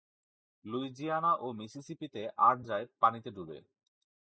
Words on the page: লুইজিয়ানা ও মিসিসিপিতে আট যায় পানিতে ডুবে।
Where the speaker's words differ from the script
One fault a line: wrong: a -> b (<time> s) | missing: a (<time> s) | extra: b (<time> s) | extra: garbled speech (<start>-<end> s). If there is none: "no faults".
no faults